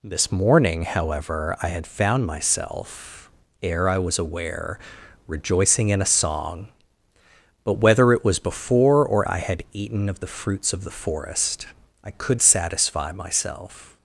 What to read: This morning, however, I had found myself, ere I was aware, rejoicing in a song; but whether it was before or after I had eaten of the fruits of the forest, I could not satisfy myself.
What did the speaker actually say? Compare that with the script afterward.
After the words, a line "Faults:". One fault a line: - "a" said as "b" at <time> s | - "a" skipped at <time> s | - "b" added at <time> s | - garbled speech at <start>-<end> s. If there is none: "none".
This morning, however, I had found myself, ere I was aware, rejoicing in a song; but whether it was before or I had eaten of the fruits of the forest, I could satisfy myself.
Faults:
- "after" skipped at 9.3 s
- "not" skipped at 12.4 s